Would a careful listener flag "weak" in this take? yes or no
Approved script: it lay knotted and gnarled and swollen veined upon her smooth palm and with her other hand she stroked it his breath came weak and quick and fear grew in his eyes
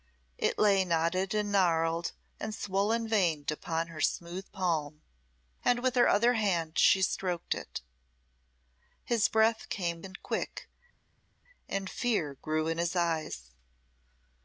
yes